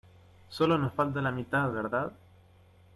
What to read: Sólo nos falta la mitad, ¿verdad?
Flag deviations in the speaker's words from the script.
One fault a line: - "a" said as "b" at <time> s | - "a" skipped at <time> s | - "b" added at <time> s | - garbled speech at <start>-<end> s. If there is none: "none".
none